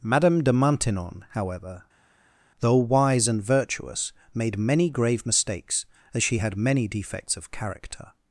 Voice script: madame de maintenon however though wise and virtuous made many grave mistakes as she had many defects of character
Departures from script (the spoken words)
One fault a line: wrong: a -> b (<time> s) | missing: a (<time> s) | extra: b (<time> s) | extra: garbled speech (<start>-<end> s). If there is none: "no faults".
no faults